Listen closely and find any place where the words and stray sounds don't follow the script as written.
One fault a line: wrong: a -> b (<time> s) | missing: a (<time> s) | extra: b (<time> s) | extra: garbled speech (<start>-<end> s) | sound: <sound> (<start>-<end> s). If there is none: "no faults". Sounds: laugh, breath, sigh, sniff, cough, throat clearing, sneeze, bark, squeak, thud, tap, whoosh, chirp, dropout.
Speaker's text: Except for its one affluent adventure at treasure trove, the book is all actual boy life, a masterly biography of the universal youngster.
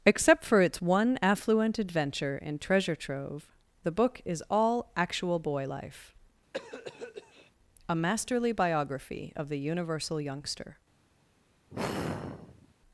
wrong: at -> in (2.4 s)
sound: cough (6.5-7.5 s)
sound: sigh (11.7-12.7 s)